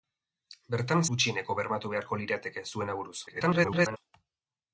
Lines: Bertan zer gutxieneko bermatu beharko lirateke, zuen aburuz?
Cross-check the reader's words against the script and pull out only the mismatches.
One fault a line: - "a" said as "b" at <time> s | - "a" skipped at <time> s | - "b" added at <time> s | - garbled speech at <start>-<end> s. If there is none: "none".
- "zer" skipped at 1.0 s
- garbled speech at 3.3-4.0 s